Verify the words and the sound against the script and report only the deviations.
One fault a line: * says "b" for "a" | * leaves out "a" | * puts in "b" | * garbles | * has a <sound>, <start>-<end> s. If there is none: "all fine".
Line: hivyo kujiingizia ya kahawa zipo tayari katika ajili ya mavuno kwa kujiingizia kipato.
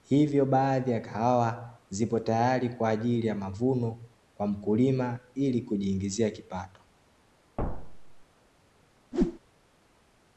* says "baadhi" for "kujiingizia"
* says "kwa" for "katika"
* puts in "mkulima ili"
* has a thud, 7.6-8.2 s
* has a whoosh, 9.1-9.4 s